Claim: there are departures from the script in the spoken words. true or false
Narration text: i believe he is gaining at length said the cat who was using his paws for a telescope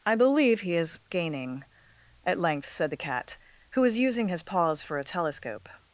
false